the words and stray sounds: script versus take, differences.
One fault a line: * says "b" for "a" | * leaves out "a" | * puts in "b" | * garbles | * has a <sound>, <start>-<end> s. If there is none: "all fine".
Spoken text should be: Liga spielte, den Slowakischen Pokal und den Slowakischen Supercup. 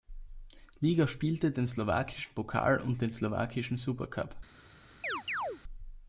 * has a chirp, 5.0-5.6 s